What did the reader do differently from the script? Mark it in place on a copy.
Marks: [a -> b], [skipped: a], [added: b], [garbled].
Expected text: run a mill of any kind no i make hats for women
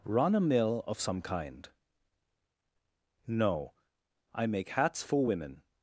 run a mill of [any -> some] kind no i make hats for women